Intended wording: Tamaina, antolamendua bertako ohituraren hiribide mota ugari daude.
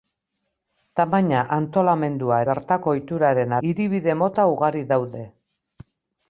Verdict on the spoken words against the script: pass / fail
pass